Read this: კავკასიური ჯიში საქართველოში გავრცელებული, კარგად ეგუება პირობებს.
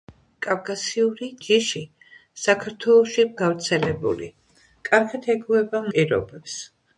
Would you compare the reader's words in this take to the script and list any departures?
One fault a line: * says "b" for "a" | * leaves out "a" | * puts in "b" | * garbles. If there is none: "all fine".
all fine